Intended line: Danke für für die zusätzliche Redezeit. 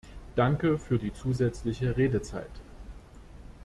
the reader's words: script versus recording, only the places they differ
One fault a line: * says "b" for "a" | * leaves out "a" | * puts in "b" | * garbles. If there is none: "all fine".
* leaves out "für"